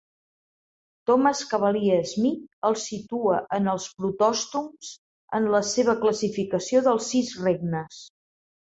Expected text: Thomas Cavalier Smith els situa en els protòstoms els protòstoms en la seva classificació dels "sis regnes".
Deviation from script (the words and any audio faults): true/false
true